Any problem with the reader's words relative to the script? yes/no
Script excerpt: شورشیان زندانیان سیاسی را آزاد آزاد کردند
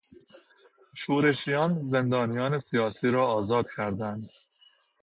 yes